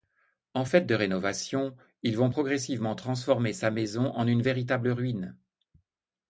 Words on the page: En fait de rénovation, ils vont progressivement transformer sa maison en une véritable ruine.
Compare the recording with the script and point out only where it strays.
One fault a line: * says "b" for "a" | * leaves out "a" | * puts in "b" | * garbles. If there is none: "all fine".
all fine